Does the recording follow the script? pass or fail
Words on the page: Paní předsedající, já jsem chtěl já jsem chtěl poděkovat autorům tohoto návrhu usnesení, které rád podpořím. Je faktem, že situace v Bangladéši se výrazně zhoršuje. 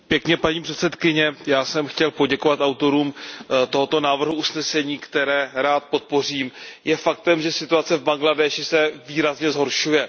fail